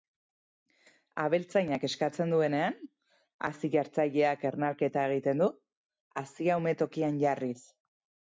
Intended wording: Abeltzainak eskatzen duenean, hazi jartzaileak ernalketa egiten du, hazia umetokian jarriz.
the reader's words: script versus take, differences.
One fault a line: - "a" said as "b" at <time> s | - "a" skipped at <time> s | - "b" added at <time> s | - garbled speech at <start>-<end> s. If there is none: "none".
none